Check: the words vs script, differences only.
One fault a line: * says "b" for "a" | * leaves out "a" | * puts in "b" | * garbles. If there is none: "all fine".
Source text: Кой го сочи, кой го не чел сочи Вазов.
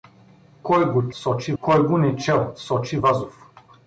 all fine